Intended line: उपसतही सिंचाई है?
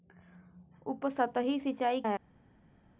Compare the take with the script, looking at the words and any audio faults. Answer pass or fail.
pass